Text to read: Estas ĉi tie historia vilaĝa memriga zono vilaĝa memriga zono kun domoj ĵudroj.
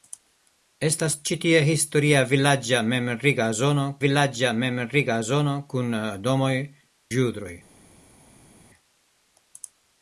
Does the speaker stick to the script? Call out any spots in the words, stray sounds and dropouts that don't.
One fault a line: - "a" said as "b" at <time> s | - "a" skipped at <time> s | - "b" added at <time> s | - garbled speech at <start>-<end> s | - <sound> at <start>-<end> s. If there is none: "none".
none